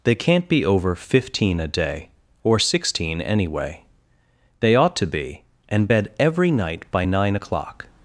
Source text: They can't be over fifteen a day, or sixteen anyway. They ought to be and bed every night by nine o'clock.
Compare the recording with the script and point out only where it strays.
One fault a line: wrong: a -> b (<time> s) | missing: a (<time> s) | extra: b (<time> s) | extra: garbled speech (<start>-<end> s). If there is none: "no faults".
no faults